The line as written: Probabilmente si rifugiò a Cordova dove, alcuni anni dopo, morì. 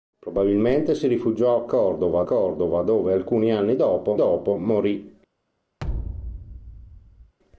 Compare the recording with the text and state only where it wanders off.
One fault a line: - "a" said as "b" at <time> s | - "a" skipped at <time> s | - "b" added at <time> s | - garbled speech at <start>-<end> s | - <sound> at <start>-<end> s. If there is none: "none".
- "Cordova" added at 2.2 s
- "dopo" added at 4.2 s
- thud at 5.8-7.3 s